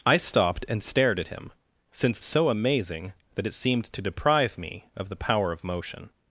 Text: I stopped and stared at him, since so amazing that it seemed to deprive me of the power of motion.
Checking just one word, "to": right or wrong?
right